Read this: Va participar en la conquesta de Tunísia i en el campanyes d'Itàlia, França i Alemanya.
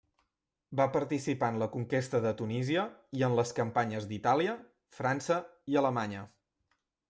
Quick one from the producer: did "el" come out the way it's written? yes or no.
no